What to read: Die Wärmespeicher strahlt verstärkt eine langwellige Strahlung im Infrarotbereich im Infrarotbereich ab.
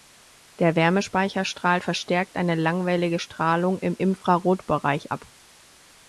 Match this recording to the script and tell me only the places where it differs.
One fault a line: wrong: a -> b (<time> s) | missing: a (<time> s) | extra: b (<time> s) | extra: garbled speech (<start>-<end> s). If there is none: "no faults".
wrong: Die -> Der (0.6 s)
missing: im Infrarotbereich (5.1 s)